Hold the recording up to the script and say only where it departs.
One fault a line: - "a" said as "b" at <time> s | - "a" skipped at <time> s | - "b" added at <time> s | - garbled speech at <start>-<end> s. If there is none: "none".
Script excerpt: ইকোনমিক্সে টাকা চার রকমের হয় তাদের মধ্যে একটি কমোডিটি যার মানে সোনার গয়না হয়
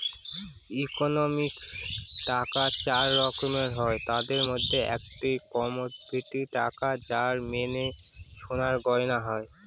- "টাকা" added at 6.6 s